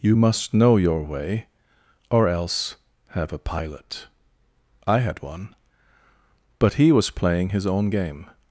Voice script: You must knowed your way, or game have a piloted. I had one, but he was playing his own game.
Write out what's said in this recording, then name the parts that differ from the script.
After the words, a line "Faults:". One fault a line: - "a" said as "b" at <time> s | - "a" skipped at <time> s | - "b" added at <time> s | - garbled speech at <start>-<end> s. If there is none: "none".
You must know your way, or else have a pilot. I had one, but he was playing his own game.
Faults:
- "knowed" said as "know" at 0.5 s
- "game" said as "else" at 2.3 s
- "piloted" said as "pilot" at 3.4 s